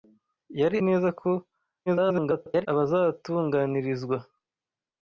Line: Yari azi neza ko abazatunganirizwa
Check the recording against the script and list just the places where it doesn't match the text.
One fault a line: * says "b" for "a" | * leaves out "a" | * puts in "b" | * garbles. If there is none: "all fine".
* leaves out "azi"
* garbles